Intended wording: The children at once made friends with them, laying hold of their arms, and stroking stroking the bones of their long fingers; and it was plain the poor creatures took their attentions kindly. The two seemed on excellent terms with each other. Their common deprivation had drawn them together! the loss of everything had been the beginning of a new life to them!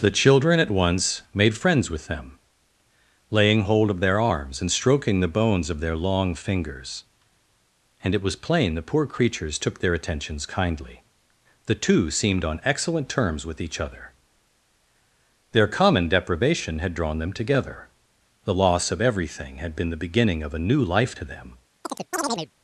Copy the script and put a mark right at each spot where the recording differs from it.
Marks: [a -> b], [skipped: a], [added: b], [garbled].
The children at once made friends with them, laying hold of their arms, and stroking [skipped: stroking] the bones of their long fingers; and it was plain the poor creatures took their attentions kindly. The two seemed on excellent terms with each other. Their common deprivation had drawn them together! the loss of everything had been the beginning of a new life to them!